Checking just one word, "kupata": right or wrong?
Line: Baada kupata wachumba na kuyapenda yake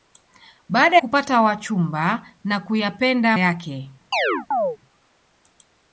right